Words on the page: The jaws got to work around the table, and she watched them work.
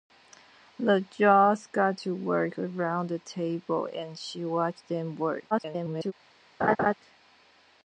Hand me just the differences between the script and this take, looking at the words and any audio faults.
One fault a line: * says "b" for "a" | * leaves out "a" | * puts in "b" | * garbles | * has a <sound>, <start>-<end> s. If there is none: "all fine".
* garbles
* has a laugh, 6.6-6.9 s